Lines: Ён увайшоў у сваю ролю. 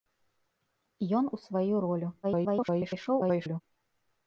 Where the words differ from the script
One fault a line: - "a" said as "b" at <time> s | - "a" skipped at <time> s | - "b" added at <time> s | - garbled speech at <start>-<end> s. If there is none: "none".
- "увайшоў" skipped at 1.3 s
- garbled speech at 2.2-3.6 s